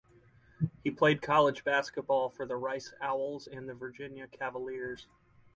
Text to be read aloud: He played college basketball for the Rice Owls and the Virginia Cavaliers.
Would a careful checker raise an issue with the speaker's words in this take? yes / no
no